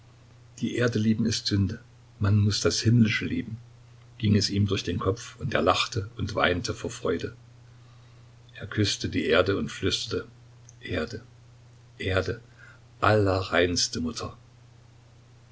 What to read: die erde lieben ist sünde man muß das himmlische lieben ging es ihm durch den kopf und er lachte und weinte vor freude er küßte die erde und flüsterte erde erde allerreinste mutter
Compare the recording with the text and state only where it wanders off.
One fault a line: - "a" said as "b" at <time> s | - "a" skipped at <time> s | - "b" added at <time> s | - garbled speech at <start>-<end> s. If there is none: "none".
none